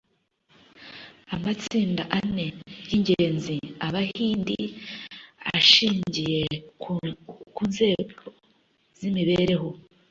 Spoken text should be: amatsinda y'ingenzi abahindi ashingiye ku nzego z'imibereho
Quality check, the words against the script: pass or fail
fail